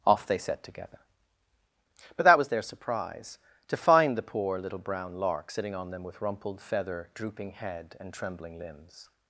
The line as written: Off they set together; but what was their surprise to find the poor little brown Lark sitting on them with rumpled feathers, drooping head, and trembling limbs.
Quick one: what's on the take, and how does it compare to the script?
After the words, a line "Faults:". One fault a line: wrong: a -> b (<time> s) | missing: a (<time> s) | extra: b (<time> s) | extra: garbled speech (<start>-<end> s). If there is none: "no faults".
Off they set together; but that was their surprise to find the poor little brown Lark sitting on them with rumpled feather, drooping head, and trembling limbs.
Faults:
wrong: what -> that (2.2 s)
wrong: feathers -> feather (6.6 s)